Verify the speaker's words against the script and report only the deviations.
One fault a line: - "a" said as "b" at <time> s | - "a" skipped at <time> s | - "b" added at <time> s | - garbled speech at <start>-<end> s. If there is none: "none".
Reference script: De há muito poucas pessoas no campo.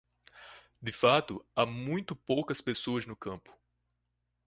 - "fato" added at 0.9 s